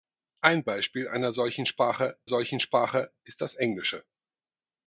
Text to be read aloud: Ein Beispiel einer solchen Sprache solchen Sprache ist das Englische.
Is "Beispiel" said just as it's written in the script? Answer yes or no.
yes